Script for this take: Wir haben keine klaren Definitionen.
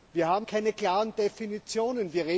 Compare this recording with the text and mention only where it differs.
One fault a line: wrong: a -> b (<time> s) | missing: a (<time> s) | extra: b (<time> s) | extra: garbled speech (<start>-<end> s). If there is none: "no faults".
no faults